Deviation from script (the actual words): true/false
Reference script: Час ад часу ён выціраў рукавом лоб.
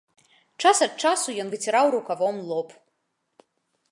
false